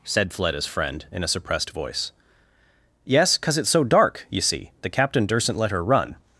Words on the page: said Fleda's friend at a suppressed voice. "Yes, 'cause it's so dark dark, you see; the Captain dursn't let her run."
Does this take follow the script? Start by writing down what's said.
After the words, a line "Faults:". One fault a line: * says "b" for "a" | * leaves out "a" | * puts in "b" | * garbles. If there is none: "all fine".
said Fleda's friend in a suppressed voice. "Yes, 'cause it's so dark, you see; the Captain dursn't let her run."
Faults:
* says "in" for "at"
* leaves out "dark"